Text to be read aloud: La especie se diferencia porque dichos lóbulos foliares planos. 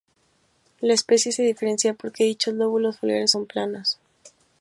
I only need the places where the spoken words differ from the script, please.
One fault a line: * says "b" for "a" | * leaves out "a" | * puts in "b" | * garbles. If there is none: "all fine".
* puts in "son"